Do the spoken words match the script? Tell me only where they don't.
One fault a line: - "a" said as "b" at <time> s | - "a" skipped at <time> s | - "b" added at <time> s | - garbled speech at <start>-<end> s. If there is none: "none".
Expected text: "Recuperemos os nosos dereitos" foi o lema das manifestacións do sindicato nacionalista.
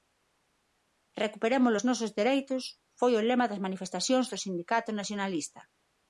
none